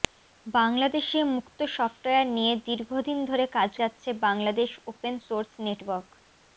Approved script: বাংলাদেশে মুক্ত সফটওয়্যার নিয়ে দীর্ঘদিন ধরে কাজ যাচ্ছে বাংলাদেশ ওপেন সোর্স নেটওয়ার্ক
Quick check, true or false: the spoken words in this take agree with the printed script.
true